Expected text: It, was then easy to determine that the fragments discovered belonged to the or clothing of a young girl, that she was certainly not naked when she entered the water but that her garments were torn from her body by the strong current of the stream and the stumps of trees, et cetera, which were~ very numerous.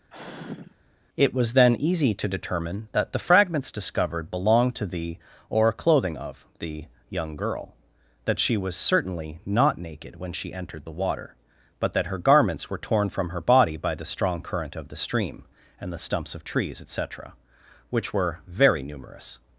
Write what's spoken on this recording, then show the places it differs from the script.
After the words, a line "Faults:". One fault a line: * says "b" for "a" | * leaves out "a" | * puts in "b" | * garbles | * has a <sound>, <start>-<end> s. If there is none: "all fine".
It, was then easy to determine that the fragments discovered belonged to the or clothing of the young girl, that she was certainly not naked when she entered the water but that her garments were torn from her body by the strong current of the stream and the stumps of trees, et cetera, which were~ very numerous.
Faults:
* has a sigh, 0.1-0.8 s
* says "the" for "a"